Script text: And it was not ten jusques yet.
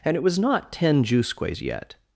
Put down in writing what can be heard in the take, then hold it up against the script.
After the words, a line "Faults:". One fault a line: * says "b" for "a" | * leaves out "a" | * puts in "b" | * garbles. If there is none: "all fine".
And it was not ten jusques yet.
Faults:
all fine